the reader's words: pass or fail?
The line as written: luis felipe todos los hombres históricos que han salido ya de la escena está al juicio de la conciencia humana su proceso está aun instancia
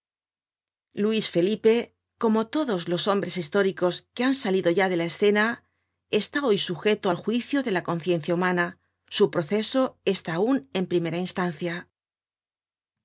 fail